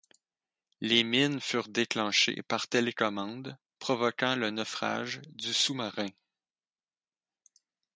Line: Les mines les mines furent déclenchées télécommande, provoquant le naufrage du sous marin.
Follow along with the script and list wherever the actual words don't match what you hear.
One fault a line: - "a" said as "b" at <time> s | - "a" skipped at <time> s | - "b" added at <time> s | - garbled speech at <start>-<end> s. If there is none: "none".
- "les mines" skipped at 1.4 s
- "par" added at 2.5 s